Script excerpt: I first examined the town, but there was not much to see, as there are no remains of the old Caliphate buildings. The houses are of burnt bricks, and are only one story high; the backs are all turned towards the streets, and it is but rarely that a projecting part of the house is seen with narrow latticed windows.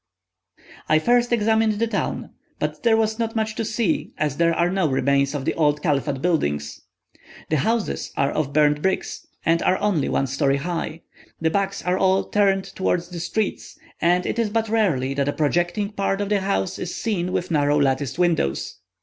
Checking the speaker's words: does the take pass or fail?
pass